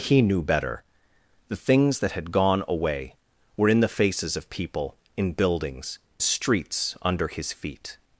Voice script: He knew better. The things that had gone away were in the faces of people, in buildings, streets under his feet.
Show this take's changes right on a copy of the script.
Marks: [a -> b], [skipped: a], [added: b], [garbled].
He knew better. The things that had gone away were in the faces of people, in buildings, streets under his feet.